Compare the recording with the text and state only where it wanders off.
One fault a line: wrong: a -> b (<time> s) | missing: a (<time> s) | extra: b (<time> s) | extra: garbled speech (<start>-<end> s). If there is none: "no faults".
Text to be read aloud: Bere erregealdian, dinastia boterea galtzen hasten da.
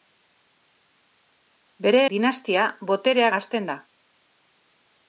missing: erregealdian (2.0 s)
missing: galtzen (3.3 s)